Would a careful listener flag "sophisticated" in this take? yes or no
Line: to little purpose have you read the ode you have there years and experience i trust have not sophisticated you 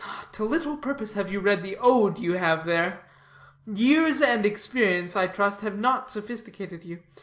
no